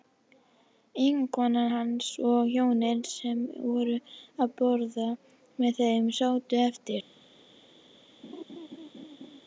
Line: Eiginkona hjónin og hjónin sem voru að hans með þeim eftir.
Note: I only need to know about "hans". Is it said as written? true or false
false